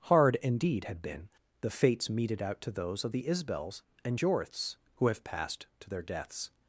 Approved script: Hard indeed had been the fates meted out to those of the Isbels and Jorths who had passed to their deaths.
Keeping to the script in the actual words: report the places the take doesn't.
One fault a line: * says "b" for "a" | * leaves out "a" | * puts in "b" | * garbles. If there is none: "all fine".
* says "have" for "had"